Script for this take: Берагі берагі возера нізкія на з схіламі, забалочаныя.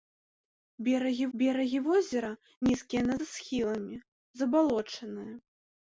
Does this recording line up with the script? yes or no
yes